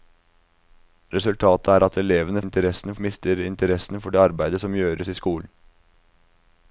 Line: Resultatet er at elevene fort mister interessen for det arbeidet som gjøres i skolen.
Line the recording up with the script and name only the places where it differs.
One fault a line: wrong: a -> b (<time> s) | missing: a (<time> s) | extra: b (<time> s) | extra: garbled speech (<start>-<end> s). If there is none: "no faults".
wrong: fort -> interessen (2.4 s)